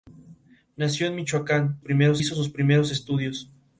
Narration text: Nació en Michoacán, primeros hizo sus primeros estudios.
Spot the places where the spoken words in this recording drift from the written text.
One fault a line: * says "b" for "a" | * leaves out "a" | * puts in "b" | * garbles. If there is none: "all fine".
all fine